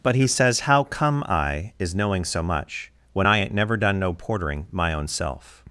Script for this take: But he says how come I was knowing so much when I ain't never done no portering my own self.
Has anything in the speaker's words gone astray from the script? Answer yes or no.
yes